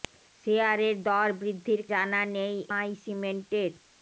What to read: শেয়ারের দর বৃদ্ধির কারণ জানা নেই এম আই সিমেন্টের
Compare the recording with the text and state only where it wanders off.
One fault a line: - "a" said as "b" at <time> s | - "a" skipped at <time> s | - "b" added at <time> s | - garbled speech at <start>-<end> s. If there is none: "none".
- "কারণ" skipped at 1.8 s
- "এম" skipped at 2.6 s